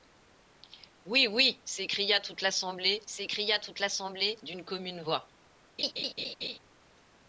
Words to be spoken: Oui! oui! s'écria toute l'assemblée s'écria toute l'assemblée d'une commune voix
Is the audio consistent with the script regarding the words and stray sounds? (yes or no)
no